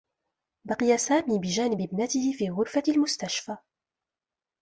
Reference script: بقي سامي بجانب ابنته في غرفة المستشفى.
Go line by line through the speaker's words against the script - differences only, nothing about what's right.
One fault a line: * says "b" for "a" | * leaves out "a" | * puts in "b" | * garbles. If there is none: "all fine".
all fine